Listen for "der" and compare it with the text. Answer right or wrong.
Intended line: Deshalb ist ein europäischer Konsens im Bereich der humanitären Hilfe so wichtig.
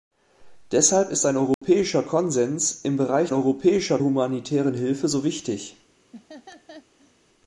wrong